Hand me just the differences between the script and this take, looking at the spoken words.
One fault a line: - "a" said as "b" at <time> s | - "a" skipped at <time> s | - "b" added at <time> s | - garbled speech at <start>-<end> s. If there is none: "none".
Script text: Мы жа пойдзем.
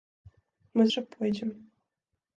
none